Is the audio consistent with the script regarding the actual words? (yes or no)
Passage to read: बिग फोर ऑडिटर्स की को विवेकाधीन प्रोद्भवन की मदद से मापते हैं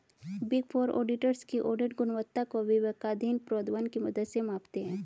no